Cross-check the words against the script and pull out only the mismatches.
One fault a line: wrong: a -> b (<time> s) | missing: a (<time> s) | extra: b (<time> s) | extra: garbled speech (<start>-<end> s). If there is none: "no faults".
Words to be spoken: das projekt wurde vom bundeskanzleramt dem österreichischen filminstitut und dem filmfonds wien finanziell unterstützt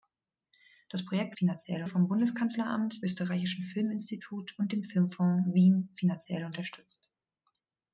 wrong: wurde -> finanziell (1.4 s)
missing: dem (3.0 s)